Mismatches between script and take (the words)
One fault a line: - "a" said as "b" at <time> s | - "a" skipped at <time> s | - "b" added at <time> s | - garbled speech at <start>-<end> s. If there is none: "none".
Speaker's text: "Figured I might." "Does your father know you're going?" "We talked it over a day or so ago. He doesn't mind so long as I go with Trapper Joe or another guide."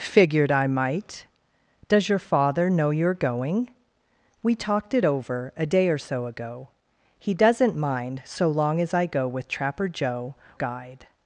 - "or another" skipped at 10.3 s